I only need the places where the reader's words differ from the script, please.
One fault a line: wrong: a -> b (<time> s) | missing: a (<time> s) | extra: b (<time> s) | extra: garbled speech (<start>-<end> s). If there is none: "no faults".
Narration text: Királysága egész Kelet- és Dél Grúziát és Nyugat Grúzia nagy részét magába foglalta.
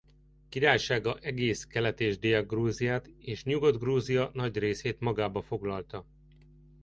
no faults